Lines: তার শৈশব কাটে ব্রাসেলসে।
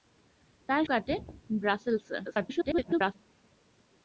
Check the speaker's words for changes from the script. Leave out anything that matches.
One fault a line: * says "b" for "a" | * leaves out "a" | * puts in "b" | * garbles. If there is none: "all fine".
* leaves out "শৈশব"
* garbles